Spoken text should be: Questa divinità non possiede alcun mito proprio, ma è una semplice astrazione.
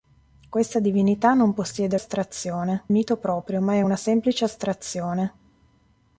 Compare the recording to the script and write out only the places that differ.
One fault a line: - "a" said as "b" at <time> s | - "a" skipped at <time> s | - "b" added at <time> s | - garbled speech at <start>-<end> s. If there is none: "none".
- "alcun" said as "astrazione" at 1.9 s